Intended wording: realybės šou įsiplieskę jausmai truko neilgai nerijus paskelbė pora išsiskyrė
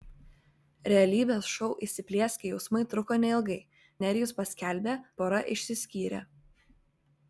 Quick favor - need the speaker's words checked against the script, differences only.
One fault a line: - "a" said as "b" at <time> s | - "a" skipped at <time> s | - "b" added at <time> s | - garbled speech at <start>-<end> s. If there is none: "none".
none